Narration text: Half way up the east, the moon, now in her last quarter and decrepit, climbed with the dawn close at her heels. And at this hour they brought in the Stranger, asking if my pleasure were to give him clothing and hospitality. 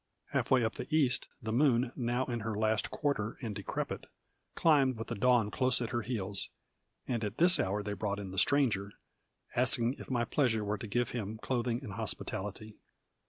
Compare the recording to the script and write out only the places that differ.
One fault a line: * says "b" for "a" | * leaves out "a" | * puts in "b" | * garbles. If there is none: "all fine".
all fine